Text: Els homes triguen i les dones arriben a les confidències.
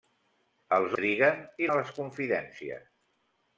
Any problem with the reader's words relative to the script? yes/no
yes